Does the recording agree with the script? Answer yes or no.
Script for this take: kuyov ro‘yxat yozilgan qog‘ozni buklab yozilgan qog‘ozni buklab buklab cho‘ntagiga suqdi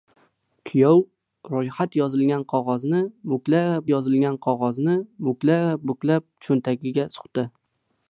yes